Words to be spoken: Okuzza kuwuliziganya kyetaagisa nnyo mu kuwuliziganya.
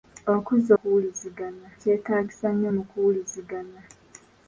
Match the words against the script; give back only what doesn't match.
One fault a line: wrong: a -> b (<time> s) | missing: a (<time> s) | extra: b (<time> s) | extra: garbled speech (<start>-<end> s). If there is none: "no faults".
no faults